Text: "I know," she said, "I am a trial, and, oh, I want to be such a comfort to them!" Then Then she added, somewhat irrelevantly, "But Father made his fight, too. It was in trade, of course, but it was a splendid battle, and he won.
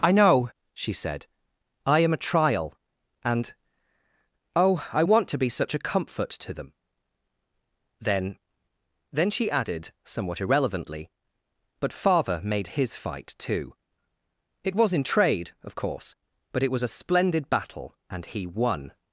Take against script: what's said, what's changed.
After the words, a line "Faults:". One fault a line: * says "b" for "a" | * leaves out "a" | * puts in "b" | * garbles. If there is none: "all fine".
"I know," she said, "I am a trial, and, oh, I want to be such a comfort to them!" Then Then she added, somewhat irrelevantly, "But Father made his fight, too. It was in trade, of course, but it was a splendid battle, and he won.
Faults:
all fine